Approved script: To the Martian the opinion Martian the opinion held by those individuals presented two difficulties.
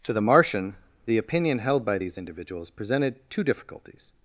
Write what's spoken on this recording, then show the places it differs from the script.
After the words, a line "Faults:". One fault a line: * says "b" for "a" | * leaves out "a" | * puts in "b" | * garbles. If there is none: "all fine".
To the Martian the opinion held by these individuals presented two difficulties.
Faults:
* leaves out "Martian the opinion"
* says "these" for "those"